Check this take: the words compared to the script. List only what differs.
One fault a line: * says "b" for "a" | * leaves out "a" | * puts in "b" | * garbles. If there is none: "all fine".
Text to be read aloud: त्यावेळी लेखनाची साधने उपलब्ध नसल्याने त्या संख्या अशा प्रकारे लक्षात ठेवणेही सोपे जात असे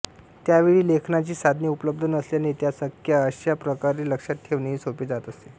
all fine